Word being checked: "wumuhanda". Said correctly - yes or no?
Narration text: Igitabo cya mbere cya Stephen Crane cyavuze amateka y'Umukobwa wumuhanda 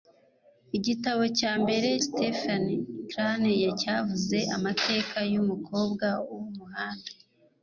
yes